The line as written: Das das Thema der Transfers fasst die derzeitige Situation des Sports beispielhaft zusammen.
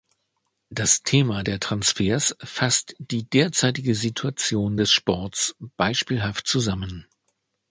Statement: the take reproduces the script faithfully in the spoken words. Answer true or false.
false